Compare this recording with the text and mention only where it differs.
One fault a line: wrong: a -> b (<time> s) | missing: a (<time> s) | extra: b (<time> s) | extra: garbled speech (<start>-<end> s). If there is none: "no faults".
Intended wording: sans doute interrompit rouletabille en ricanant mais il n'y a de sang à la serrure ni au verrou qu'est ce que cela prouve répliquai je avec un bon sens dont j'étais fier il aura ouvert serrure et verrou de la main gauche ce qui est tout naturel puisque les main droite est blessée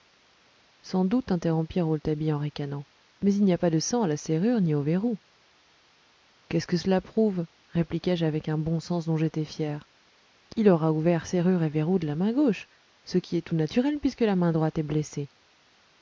extra: pas (3.6 s)
wrong: les -> la (14.2 s)